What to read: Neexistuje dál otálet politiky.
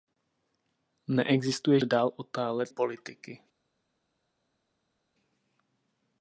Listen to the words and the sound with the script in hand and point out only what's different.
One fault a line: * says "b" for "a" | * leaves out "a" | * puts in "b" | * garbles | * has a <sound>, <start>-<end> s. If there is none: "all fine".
all fine